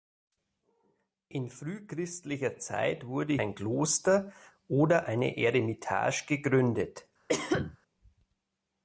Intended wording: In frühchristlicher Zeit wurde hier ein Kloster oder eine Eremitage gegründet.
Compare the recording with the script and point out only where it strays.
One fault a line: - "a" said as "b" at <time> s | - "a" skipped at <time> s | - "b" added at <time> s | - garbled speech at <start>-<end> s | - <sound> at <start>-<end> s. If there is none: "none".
- "hier" skipped at 3.4 s
- cough at 7.3-7.8 s